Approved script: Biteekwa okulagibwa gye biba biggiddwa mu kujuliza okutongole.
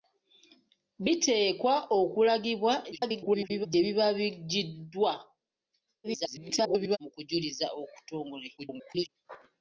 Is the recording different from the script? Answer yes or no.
yes